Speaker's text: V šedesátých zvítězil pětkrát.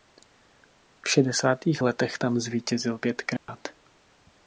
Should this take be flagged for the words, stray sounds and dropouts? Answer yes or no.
yes